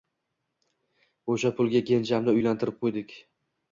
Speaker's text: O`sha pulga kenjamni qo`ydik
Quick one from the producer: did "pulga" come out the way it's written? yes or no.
yes